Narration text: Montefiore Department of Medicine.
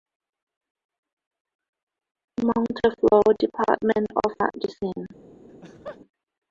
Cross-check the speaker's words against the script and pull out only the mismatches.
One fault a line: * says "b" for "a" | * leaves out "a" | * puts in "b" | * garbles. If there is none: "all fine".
all fine